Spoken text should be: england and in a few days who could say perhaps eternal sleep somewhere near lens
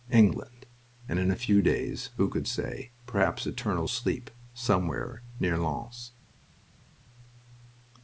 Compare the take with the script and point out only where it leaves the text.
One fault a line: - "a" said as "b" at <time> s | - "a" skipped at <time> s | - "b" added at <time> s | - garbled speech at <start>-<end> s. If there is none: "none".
none